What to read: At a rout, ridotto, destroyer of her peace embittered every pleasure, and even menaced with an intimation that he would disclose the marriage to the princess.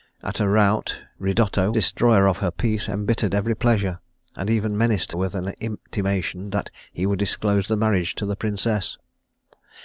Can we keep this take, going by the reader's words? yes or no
yes